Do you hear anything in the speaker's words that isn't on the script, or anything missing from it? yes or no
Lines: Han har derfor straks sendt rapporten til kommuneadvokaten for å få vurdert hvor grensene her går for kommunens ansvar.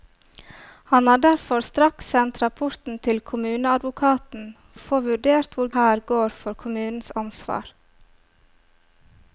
yes